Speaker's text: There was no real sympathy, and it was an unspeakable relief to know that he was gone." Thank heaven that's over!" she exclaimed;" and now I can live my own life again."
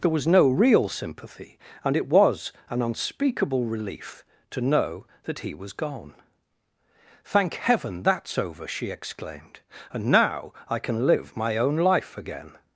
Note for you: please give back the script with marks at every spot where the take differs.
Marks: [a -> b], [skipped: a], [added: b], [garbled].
There was no real sympathy, and it was an unspeakable relief to know that he was gone." Thank heaven that's over!" she exclaimed;" and now I can live my own life again."